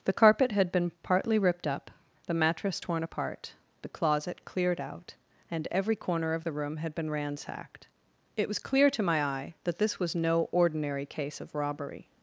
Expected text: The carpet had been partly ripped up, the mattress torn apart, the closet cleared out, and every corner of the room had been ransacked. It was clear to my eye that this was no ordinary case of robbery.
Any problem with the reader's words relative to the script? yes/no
no